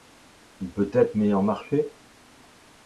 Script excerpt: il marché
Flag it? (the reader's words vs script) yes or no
yes